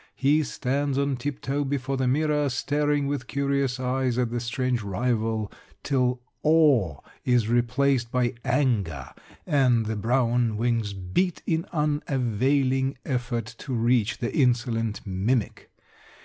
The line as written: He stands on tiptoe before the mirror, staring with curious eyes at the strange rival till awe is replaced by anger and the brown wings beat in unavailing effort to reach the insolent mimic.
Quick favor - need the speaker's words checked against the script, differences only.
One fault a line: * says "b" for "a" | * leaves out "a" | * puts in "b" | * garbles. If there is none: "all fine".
all fine